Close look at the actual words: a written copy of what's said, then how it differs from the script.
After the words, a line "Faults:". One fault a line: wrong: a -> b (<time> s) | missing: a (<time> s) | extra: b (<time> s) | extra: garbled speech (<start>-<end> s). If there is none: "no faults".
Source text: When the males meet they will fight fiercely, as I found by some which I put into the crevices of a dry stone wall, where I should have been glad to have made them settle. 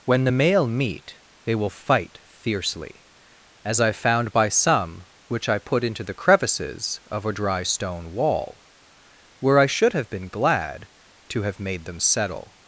When the male meet they will fight fiercely, as I found by some which I put into the crevices of a dry stone wall, where I should have been glad to have made them settle.
Faults:
wrong: males -> male (0.3 s)